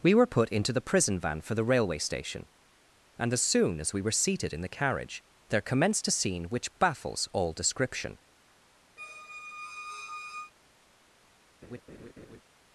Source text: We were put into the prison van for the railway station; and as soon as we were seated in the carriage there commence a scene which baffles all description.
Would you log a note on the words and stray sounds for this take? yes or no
yes